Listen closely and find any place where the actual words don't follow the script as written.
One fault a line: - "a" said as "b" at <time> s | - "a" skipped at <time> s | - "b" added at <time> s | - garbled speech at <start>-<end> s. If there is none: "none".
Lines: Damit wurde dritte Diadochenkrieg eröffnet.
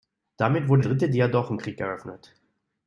none